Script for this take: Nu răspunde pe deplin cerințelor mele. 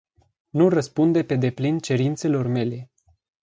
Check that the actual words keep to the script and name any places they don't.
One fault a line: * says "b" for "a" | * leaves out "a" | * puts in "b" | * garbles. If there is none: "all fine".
all fine